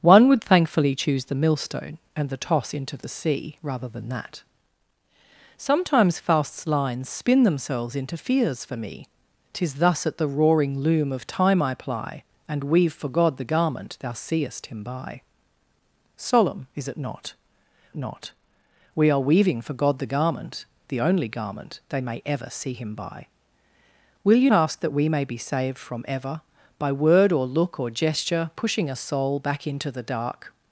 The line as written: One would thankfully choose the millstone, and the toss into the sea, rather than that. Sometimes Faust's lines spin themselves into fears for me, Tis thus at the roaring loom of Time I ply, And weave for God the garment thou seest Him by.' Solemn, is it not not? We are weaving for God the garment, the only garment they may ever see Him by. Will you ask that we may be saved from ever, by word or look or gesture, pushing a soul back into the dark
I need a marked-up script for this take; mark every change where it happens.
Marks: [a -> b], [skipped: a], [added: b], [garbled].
One would thankfully choose the millstone, and the toss into the sea, rather than that. Sometimes Faust's lines spin themselves into fears for me, Tis thus at the roaring loom of Time I ply, And weave for God the garment thou seest Him by.' Solemn, is it not not? We are weaving for God the garment, the only garment they may ever see Him by. Will you ask that we may be saved from ever, by word or look or gesture, pushing a soul back into the dark